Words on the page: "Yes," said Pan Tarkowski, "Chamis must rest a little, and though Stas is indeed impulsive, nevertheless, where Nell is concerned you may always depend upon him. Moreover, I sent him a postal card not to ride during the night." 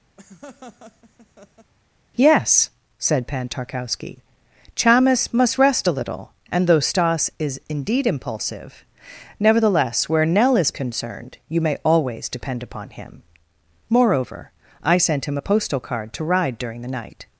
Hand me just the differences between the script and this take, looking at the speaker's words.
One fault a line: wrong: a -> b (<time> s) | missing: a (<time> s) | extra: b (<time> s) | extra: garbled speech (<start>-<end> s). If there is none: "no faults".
missing: not (16.1 s)